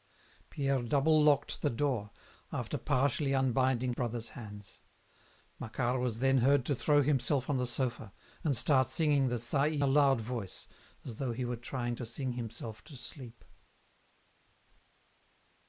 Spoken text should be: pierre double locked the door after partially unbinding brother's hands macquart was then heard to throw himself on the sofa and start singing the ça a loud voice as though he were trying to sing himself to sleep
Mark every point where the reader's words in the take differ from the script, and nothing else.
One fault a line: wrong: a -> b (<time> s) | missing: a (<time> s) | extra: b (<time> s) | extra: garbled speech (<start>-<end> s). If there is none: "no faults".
no faults